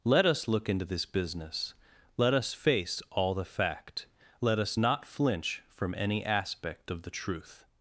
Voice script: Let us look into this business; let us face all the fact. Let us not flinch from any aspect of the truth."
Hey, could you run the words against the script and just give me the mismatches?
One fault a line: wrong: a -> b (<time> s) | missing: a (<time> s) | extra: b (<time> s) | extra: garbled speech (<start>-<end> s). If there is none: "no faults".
no faults